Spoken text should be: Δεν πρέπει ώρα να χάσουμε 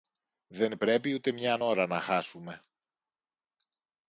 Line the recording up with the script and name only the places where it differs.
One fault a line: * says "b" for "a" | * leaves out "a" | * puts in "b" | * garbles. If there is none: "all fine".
* puts in "ούτε μιαν"